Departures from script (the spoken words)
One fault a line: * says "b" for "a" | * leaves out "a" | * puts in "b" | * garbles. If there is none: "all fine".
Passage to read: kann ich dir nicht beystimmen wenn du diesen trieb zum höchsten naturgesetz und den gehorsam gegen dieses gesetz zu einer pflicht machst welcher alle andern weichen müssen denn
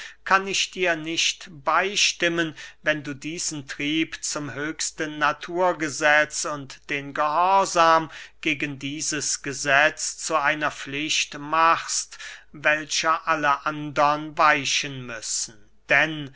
all fine